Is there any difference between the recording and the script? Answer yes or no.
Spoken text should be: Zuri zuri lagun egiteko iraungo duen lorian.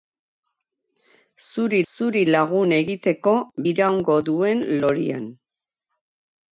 no